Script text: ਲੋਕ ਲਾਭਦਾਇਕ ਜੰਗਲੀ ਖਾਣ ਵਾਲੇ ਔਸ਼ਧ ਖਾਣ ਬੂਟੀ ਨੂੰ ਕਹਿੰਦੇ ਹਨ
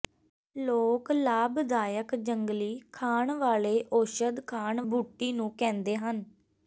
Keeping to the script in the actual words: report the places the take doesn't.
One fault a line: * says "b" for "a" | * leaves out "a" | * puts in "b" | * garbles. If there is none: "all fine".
all fine